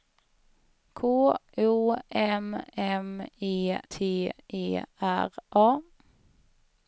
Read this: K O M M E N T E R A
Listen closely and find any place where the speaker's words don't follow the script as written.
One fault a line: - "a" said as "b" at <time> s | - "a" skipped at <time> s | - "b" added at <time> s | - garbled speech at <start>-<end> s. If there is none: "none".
- "N" skipped at 3.8 s